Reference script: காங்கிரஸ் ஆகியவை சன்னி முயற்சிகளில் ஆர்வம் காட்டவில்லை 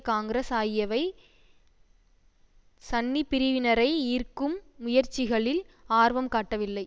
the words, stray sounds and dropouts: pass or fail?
fail